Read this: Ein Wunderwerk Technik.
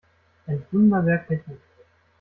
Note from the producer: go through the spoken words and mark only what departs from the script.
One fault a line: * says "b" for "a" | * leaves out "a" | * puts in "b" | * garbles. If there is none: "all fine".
all fine